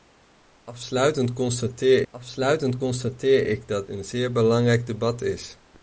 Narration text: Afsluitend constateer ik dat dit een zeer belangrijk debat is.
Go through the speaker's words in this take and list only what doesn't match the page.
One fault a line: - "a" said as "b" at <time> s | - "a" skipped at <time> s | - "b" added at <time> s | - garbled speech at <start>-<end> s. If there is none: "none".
- "afsluitend constateer" added at 2.1 s
- "dit" skipped at 3.9 s